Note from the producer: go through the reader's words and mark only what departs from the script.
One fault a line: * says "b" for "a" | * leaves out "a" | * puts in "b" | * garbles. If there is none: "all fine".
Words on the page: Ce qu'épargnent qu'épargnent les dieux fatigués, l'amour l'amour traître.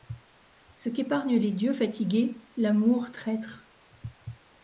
* leaves out "qu'épargnent"
* leaves out "l'amour"